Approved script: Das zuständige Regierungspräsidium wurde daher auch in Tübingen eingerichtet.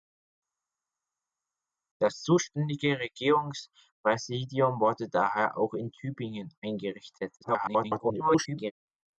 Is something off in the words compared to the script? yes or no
yes